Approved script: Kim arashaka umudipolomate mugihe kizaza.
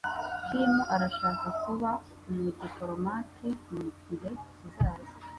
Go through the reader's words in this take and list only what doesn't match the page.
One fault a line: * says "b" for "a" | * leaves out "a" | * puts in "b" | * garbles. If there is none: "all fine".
* puts in "kuba"